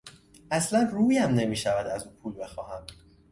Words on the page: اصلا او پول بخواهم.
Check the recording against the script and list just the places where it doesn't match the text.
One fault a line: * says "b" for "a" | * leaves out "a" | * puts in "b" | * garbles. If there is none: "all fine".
* puts in "رویم نمیشود از"